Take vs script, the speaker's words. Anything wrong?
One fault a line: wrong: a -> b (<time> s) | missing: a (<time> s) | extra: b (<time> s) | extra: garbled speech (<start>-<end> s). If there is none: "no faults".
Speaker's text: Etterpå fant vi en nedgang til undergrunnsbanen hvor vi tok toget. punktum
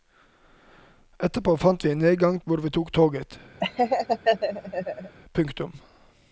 missing: til undergrunnsbanen (2.4 s)